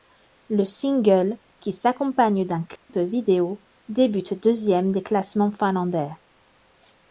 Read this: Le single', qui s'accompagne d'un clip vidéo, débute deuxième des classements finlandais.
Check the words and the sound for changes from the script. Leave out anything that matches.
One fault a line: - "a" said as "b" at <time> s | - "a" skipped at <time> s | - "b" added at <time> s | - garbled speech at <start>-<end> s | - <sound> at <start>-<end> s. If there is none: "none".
- dropout at 2.8-2.9 s